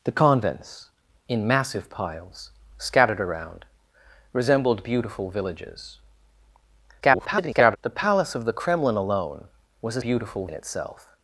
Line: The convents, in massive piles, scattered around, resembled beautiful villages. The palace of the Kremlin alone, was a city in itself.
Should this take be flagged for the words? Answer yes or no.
yes